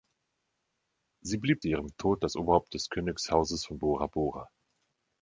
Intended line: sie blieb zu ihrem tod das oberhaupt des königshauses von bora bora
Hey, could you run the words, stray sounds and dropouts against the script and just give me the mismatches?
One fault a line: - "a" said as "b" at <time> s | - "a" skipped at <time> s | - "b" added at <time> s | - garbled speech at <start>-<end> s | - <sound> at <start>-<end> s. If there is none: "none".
none